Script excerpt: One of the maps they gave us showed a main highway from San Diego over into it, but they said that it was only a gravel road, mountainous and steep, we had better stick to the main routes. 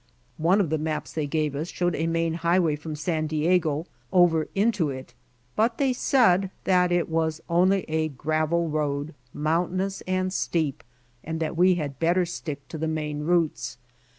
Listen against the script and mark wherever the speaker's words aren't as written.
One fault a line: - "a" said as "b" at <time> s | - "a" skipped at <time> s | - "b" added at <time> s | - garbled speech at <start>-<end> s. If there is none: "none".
- "and that" added at 11.2 s